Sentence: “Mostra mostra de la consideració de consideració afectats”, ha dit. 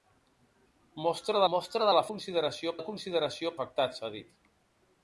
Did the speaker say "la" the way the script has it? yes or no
yes